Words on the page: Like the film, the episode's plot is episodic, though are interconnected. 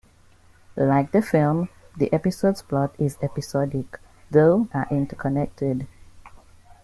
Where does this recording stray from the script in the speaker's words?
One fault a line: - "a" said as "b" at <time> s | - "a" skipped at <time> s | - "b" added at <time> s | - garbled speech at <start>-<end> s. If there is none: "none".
none